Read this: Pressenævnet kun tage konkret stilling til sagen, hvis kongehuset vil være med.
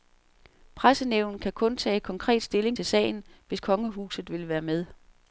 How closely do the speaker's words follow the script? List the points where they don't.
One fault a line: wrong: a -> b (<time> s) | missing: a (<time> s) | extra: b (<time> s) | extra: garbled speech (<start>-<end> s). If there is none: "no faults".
extra: kan (1.4 s)